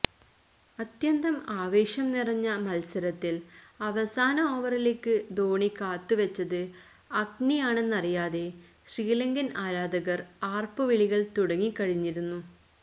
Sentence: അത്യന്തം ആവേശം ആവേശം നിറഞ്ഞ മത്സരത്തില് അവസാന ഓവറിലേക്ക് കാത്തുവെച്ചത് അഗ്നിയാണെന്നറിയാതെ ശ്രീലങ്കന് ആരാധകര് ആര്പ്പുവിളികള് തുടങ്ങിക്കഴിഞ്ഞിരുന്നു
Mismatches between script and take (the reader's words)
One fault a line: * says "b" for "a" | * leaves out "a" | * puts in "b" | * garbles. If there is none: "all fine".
* leaves out "ആവേശം"
* puts in "ധോണി"